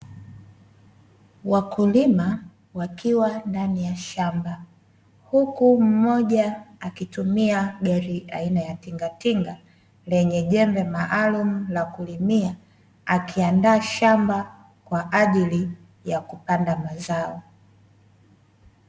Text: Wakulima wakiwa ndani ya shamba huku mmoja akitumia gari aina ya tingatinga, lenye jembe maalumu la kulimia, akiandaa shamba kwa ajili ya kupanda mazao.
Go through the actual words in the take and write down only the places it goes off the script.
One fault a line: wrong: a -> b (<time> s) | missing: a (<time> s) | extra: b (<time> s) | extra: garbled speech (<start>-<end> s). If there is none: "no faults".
no faults